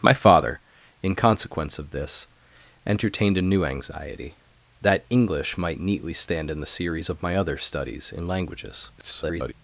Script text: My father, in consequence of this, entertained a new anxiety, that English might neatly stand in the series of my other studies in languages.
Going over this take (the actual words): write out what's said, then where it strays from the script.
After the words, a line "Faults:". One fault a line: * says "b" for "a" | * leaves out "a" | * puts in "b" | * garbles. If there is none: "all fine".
My father, in consequence of this, entertained a new anxiety, that English might neatly stand in the series of my other studies in languages. [garbled]
Faults:
* garbles